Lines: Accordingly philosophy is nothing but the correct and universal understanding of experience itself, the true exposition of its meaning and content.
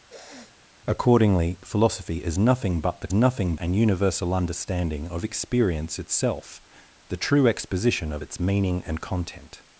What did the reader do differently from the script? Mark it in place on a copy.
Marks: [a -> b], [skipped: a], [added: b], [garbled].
Accordingly philosophy is nothing but the [correct -> nothing] and universal understanding of experience itself, the true exposition of its meaning and content.